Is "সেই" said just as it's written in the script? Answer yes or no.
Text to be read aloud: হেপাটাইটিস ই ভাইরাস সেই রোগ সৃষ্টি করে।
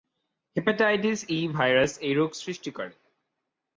no